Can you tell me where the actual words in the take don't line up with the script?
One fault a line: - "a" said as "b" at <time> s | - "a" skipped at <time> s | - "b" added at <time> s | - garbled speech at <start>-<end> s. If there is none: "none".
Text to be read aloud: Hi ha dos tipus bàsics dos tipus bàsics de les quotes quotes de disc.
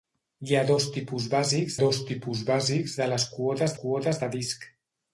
none